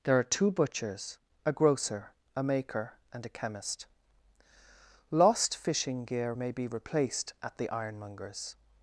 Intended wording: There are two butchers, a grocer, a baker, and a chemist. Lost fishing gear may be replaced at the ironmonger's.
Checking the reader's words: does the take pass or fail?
fail